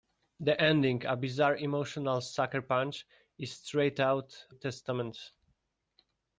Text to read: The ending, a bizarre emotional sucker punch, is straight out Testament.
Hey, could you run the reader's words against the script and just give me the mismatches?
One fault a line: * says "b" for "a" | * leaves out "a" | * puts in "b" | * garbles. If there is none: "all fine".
all fine